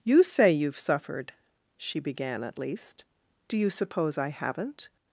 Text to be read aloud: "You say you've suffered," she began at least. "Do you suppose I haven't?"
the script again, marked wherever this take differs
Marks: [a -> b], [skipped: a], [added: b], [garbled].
"You say you've suffered," she began at least. "Do you suppose I haven't?"